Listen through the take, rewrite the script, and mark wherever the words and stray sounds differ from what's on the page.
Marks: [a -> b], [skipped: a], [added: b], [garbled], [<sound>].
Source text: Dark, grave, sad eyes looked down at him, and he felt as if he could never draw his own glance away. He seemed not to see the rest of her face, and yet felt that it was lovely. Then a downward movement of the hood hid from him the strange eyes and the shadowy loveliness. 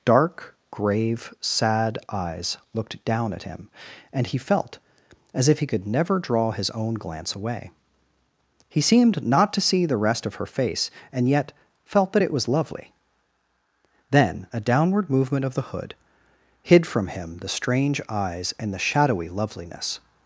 Dark, grave, sad eyes looked down at him, and he felt as if he could never draw his own glance away. He seemed not to see the rest of her face, and yet felt that it was lovely. Then a downward movement of the hood hid from him the strange eyes and the shadowy loveliness.